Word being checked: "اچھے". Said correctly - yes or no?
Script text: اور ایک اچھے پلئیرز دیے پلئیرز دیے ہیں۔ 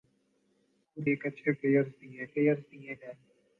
yes